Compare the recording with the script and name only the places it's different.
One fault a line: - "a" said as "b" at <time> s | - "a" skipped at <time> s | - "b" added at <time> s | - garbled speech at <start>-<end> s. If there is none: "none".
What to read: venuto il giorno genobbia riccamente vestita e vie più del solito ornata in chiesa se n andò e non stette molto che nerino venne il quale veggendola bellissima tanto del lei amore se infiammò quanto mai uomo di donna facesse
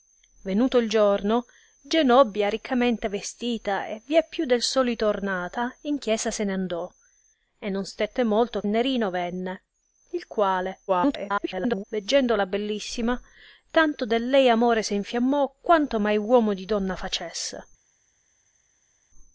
- "che" skipped at 8.6 s
- garbled speech at 10.9-11.8 s